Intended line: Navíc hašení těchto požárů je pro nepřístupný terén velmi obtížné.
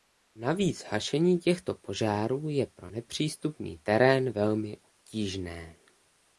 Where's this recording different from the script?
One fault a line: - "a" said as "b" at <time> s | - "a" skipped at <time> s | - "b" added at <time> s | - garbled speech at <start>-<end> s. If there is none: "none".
none